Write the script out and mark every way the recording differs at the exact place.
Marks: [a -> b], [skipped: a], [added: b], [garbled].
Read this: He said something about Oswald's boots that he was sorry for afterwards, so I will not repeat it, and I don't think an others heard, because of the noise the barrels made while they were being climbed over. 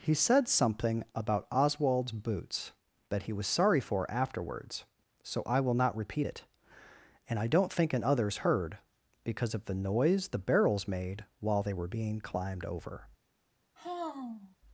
He said something about Oswald's boots that he was sorry for afterwards, so I will not repeat it, and I don't think an others heard, because of the noise the barrels made while they were being climbed over.